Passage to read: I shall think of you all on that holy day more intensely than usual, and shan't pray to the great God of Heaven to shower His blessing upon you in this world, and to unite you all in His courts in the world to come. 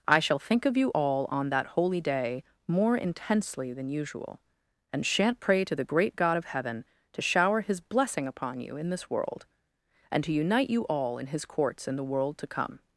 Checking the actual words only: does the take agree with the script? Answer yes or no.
yes